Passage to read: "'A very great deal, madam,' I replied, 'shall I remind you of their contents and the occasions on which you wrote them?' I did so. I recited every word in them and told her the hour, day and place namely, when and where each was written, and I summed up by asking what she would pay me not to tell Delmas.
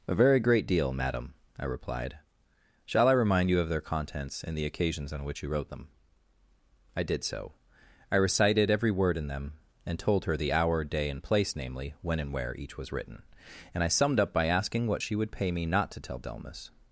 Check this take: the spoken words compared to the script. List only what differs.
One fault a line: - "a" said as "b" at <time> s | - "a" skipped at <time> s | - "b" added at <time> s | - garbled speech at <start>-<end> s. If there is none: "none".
none